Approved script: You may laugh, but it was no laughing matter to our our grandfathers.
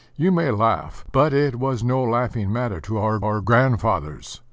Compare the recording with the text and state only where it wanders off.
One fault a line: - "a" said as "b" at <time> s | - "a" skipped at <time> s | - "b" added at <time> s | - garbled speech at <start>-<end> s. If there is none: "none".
none